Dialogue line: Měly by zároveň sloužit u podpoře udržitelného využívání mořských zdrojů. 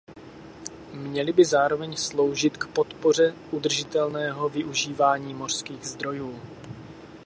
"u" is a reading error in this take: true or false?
true